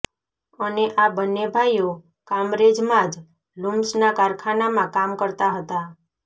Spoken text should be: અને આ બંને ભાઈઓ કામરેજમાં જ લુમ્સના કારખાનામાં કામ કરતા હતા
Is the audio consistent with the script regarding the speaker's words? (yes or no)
yes